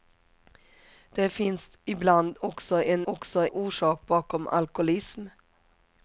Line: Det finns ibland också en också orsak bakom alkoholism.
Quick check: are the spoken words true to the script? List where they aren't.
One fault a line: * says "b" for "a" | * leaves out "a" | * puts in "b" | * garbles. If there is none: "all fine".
all fine